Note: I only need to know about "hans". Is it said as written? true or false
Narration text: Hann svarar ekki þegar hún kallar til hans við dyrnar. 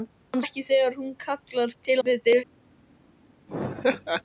false